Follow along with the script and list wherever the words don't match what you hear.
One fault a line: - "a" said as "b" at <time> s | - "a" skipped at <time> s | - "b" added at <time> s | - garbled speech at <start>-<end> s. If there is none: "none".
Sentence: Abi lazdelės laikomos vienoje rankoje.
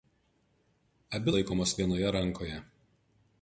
- "lazdelės" skipped at 1.4 s